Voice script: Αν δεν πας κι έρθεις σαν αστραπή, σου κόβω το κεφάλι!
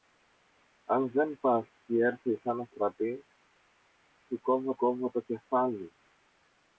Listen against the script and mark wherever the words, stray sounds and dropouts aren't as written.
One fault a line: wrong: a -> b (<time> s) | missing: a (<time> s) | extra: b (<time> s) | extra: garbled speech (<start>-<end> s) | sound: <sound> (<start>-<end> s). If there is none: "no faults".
extra: κόβω (4.8 s)